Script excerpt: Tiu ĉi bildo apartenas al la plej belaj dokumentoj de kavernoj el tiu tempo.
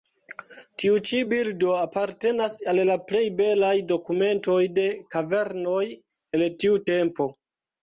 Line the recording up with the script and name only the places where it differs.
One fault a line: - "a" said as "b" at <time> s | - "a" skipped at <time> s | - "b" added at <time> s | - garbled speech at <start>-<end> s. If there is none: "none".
none